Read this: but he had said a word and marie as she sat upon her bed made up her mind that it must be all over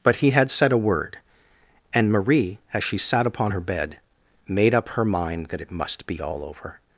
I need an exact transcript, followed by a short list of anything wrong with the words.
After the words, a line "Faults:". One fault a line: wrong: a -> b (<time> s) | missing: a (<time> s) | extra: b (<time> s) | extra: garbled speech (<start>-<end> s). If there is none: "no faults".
but he had said a word and marie as she sat upon her bed made up her mind that it must be all over
Faults:
no faults